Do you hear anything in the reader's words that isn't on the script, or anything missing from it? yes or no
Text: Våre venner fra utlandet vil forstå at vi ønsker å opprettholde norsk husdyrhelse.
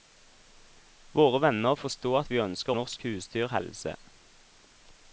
yes